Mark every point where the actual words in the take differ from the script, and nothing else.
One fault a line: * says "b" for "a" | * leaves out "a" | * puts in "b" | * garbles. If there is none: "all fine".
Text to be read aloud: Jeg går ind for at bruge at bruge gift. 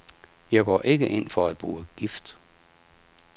* puts in "ikke"
* leaves out "at bruge"